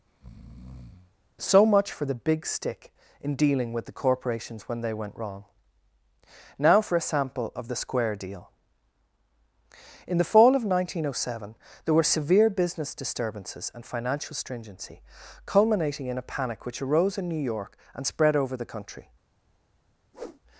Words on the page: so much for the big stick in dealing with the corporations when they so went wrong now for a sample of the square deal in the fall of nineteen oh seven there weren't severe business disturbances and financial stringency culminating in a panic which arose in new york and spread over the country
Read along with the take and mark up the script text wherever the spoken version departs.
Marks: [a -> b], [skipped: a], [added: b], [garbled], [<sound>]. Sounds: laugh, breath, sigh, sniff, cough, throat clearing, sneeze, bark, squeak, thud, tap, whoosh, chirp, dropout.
[breath] so much for the big stick in dealing with the corporations when they [skipped: so] went wrong now for a sample of the square deal in the fall of nineteen oh seven there [weren't -> were] severe business disturbances and financial stringency culminating in a panic which arose in new york and spread over the country [whoosh]